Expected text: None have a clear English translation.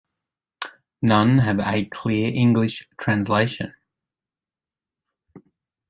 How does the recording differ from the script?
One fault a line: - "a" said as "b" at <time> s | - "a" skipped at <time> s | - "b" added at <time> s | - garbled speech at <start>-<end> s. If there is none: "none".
none